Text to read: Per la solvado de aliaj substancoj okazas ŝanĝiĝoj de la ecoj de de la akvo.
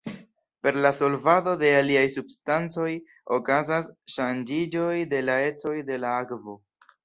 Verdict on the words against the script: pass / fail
fail